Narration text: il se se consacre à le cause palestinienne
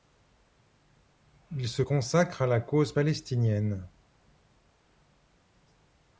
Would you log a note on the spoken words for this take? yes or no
yes